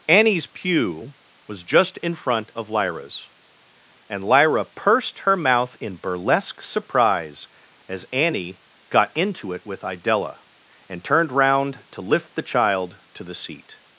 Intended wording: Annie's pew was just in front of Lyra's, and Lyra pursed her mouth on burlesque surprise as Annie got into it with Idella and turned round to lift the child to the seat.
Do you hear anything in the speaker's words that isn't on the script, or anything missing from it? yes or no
yes